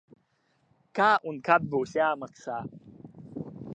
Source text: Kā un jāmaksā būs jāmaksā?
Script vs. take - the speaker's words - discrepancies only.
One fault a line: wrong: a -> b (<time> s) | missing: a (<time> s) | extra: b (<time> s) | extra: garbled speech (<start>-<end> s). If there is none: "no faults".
wrong: jāmaksā -> kad (1.5 s)